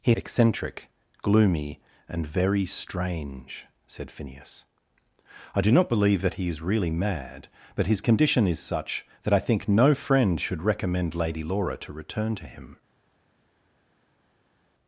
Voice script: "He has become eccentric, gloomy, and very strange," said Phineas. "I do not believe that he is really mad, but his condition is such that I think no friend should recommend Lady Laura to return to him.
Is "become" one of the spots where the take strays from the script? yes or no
yes